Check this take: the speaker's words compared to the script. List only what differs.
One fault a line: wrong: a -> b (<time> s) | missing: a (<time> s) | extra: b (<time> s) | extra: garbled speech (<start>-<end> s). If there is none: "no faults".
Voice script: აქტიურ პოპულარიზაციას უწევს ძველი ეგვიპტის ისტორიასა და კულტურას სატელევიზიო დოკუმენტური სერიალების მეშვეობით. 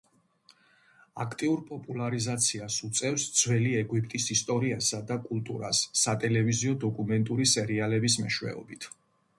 no faults